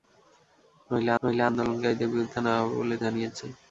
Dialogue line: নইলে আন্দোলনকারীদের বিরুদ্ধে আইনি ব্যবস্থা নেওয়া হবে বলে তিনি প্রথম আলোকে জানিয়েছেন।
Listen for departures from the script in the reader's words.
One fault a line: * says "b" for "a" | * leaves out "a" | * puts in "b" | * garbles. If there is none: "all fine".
* puts in "নইলে"
* leaves out "আইনি ব্যবস্থা"
* leaves out "তিনি প্রথম আলোকে"